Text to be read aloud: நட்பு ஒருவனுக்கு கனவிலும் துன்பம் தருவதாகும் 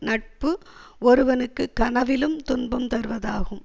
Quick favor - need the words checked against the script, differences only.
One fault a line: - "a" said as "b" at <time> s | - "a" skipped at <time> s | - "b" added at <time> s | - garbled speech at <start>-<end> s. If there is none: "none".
none